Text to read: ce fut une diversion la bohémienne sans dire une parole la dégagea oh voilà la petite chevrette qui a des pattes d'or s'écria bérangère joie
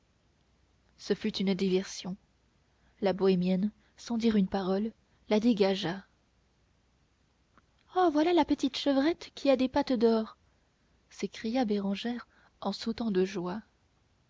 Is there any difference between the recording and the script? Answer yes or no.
yes